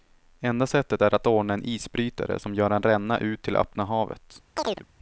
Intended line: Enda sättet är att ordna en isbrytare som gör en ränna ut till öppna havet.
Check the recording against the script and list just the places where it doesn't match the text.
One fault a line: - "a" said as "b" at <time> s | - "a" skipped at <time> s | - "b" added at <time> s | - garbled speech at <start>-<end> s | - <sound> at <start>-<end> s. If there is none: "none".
- chirp at 4.6-4.9 s